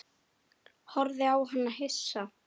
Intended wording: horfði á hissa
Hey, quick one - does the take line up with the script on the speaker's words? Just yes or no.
no